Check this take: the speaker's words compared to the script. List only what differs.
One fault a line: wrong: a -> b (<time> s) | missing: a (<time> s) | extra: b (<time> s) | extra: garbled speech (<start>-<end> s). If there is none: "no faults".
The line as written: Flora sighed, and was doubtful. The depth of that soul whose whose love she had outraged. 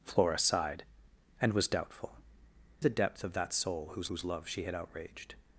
no faults